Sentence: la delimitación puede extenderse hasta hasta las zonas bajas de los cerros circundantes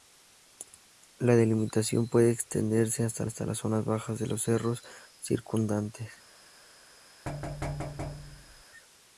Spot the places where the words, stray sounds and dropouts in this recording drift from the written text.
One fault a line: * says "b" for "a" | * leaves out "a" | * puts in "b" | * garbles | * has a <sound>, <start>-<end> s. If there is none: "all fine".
* has a thud, 7.3-8.6 s